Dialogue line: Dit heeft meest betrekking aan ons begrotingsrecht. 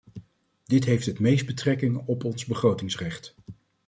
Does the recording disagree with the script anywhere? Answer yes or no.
yes